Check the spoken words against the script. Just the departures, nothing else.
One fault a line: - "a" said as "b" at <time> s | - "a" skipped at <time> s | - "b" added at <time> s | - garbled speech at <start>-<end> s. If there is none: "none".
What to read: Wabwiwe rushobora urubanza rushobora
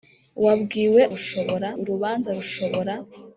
none